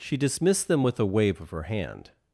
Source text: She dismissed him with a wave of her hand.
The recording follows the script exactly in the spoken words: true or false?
false